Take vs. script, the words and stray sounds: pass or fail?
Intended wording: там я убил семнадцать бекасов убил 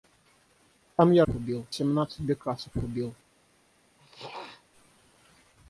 fail